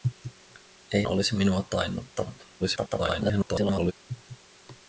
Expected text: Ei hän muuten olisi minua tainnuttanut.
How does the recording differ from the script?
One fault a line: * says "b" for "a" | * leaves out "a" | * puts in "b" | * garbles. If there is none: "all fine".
* leaves out "hän muuten"
* garbles